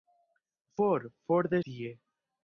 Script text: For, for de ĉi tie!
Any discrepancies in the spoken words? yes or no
yes